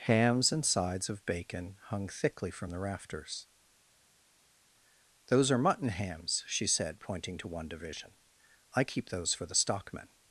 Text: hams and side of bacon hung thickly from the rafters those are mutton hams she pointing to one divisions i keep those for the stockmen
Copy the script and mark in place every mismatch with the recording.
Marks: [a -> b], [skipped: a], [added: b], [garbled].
hams and [side -> sides] of bacon hung thickly from the rafters those are mutton hams she [added: said] pointing to one [divisions -> division] i keep those for the stockmen